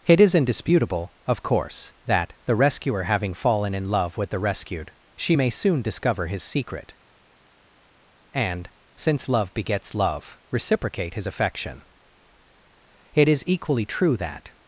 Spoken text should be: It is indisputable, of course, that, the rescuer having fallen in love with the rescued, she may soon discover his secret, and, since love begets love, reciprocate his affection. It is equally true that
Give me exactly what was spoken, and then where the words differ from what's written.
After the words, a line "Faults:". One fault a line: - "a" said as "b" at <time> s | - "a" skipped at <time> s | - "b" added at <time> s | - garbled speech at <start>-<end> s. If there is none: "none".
It is indisputable, of course, that, the rescuer having fallen in love with the rescued, she may soon discover his secret, and, since love begets love, reciprocate his affection. It is equally true that
Faults:
none